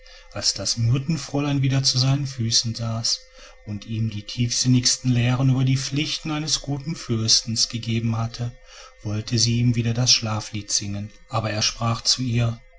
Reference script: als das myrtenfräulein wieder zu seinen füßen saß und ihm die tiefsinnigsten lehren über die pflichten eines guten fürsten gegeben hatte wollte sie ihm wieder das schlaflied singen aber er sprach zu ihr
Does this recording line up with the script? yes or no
yes